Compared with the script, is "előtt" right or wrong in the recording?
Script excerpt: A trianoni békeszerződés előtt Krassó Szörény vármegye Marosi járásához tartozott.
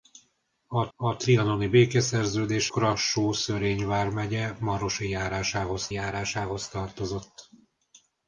wrong